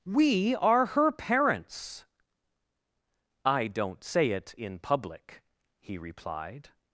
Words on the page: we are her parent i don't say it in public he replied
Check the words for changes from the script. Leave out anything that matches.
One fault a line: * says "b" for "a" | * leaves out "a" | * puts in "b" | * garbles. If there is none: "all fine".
* says "parents" for "parent"